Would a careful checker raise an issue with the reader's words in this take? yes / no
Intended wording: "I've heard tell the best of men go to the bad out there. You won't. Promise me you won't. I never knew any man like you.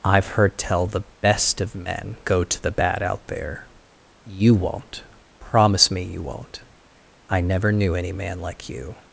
no